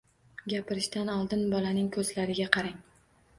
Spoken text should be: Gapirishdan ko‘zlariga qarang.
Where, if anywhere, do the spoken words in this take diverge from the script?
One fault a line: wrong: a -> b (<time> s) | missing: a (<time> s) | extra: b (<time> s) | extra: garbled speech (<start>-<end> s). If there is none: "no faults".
extra: oldin bolaning (1.1 s)